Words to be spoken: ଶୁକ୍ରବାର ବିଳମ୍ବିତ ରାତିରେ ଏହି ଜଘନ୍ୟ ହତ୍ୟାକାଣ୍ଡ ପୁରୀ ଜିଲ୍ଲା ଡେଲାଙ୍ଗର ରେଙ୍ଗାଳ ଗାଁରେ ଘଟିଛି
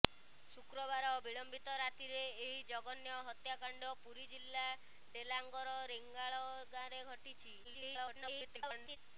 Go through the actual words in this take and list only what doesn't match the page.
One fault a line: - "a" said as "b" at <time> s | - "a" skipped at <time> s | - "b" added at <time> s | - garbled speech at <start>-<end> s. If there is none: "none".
- garbled speech at 7.6-9.0 s